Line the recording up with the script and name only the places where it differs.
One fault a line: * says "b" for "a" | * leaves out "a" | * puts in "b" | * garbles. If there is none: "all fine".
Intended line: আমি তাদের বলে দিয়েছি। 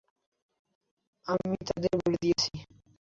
all fine